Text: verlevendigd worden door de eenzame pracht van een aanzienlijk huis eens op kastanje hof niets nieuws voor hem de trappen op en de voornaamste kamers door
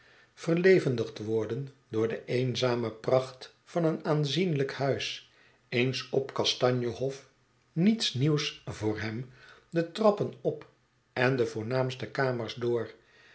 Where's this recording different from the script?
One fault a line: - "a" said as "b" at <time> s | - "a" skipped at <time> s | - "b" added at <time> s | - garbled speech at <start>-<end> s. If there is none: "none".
none